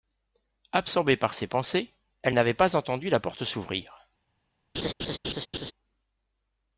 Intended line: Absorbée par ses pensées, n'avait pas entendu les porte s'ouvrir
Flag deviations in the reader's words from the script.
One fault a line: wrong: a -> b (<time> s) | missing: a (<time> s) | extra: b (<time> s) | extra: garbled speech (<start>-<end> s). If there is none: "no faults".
extra: elle (2.2 s)
wrong: les -> la (3.1 s)